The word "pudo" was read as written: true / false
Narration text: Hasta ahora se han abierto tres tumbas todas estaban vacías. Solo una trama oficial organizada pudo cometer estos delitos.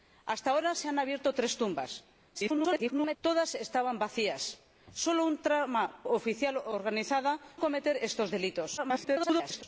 false